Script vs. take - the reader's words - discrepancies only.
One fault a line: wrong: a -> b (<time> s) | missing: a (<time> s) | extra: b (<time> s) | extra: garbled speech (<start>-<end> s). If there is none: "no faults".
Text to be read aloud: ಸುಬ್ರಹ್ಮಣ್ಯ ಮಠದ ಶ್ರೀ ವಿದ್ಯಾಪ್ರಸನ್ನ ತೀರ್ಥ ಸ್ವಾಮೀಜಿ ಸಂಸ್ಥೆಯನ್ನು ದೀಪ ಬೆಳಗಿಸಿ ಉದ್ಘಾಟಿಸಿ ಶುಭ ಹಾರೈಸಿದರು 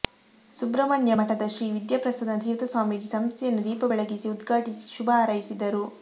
no faults